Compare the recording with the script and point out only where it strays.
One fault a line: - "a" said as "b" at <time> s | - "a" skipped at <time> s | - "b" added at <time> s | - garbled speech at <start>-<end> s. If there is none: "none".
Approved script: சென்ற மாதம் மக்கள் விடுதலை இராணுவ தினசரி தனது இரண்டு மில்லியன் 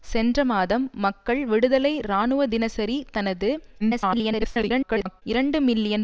- garbled speech at 3.8-5.2 s